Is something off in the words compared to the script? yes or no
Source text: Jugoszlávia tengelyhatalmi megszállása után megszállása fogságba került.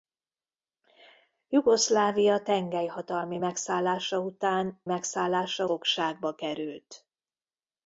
no